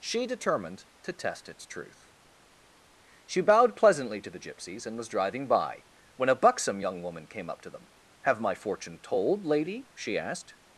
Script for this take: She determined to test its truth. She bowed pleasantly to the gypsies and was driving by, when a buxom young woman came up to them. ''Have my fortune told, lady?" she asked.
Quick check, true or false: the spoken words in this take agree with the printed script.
true